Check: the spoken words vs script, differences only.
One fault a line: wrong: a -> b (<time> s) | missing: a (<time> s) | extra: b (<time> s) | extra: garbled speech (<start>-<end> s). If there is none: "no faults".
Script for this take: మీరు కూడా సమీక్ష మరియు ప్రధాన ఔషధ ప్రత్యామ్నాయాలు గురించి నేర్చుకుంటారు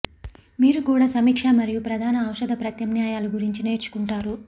no faults